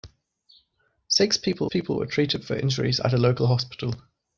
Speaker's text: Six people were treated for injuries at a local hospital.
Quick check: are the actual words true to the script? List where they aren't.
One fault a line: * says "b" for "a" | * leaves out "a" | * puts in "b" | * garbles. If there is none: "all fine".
* puts in "people"